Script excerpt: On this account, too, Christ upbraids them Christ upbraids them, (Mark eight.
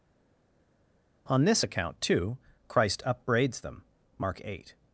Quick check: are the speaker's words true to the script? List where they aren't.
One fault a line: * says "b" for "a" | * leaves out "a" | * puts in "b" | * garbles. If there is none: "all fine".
* leaves out "Christ upbraids them"